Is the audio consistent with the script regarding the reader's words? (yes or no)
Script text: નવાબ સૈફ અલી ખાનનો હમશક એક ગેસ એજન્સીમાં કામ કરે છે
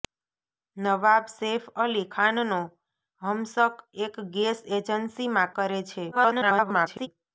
no